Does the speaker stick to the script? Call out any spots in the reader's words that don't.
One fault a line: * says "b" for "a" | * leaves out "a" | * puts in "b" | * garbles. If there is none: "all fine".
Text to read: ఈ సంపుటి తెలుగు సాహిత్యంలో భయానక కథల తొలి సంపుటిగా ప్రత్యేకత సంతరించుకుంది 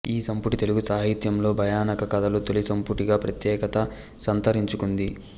all fine